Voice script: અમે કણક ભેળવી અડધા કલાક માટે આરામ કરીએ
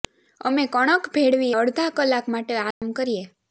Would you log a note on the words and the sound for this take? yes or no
yes